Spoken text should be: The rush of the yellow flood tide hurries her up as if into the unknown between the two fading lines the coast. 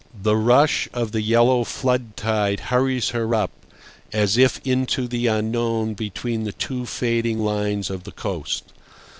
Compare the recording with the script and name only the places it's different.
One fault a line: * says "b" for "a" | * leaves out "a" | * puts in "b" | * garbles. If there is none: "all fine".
* puts in "of"